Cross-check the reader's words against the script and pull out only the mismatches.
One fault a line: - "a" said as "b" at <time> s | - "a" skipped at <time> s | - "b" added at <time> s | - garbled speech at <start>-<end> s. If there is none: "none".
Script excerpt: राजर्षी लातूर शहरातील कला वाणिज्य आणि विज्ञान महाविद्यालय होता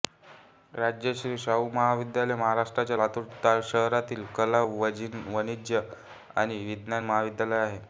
- "शाहू महाविद्यालय महाराष्ट्राच्या" added at 1.4 s
- "होता" said as "आहे" at 7.6 s